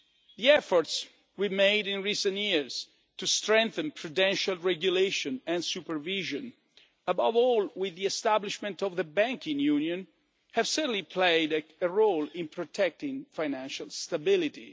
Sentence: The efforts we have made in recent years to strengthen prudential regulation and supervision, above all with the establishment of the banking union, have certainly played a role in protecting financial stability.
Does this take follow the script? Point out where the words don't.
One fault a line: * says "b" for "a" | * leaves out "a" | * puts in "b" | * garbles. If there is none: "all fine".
all fine